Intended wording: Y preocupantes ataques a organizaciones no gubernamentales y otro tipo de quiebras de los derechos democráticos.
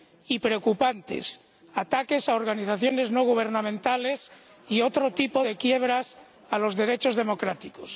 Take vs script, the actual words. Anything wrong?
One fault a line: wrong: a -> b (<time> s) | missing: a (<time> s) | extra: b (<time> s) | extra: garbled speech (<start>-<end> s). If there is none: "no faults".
no faults